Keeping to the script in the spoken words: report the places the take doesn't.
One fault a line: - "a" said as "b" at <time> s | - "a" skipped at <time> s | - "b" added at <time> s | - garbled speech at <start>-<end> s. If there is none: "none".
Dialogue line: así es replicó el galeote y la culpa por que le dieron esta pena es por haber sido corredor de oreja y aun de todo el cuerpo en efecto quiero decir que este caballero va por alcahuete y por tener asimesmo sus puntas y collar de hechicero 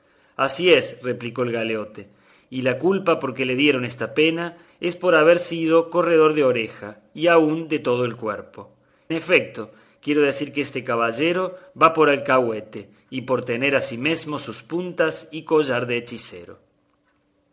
- "en" skipped at 8.7 s